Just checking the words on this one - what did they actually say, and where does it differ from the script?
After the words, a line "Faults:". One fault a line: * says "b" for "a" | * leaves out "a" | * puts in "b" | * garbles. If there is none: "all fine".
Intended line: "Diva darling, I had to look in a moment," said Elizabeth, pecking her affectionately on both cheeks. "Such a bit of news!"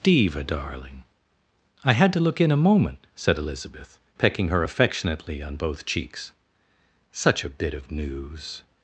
"Diva darling, I had to look in a moment," said Elizabeth, pecking her affectionately on both cheeks. "Such a bit of news!"
Faults:
all fine